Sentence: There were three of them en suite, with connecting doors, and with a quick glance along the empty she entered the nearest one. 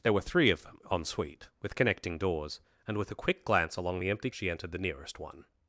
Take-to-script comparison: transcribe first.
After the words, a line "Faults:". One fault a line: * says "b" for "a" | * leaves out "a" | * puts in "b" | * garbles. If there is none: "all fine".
There were three of them en suite, with connecting doors, and with a quick glance along the empty she entered the nearest one.
Faults:
all fine